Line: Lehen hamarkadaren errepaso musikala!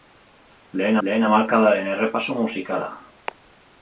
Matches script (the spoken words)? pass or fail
fail